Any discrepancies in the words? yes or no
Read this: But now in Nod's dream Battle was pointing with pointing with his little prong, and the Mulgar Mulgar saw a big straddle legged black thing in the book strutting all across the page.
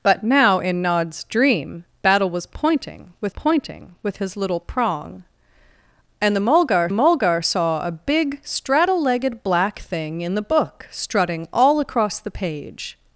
no